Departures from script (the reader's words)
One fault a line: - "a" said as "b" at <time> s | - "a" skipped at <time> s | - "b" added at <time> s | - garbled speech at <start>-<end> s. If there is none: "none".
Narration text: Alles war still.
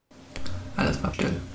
none